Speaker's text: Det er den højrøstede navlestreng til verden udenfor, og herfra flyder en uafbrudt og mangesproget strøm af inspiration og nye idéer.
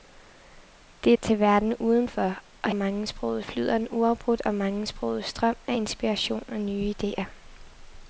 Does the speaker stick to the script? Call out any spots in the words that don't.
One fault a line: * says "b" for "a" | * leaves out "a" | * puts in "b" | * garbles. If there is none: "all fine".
* leaves out "den højrøstede navlestreng"
* says "mangesproget" for "herfra"